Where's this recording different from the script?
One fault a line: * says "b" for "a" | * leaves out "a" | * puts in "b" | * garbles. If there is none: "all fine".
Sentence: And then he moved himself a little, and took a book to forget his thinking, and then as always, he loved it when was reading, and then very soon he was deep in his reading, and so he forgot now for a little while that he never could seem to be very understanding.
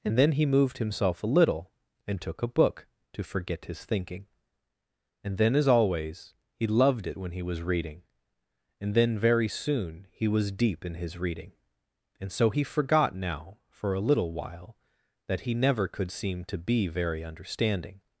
* puts in "he"